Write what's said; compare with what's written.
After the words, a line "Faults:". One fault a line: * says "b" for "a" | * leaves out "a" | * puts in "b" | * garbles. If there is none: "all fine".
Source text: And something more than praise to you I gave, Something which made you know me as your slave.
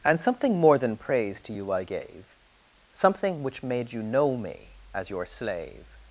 And something more than praise to you I gave, Something which made you know me as your slave.
Faults:
all fine